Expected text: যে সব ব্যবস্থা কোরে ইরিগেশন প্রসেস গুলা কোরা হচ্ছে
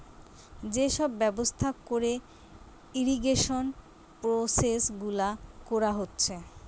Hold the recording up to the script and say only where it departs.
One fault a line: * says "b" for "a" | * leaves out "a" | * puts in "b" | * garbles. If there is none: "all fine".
all fine